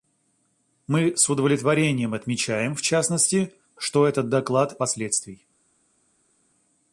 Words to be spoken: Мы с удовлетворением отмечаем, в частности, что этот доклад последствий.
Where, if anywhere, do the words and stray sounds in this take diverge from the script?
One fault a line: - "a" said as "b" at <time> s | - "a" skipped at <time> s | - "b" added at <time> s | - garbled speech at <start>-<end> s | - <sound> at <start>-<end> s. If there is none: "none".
none